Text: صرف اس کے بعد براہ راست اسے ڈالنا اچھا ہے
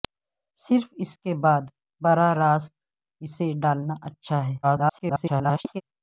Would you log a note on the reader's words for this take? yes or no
yes